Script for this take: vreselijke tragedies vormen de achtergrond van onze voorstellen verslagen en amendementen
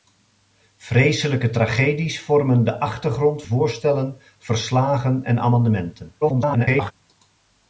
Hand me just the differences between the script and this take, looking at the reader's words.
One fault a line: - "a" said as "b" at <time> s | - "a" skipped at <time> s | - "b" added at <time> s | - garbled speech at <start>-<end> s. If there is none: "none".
- "van onze" skipped at 3.4 s
- garbled speech at 6.2-6.9 s